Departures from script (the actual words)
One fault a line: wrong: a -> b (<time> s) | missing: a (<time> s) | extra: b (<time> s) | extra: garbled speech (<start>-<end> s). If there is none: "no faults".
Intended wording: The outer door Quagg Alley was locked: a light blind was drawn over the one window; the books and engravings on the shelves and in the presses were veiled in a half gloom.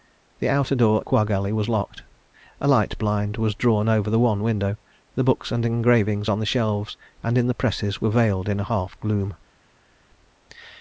no faults